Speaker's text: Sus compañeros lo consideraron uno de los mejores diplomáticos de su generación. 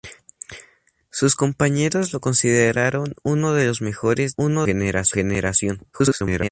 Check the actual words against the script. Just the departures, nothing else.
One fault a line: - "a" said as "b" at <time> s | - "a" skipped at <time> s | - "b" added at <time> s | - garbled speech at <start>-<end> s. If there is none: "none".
- "diplomáticos" said as "uno" at 4.3 s
- garbled speech at 5.9-6.5 s